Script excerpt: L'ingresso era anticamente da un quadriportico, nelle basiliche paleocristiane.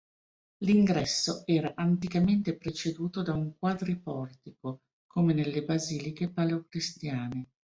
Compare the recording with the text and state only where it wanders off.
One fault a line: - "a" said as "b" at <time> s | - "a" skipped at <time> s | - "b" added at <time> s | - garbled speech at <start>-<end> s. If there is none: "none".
- "preceduto" added at 2.6 s
- "come" added at 5.0 s